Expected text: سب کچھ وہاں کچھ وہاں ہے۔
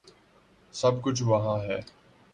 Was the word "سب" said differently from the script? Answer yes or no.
no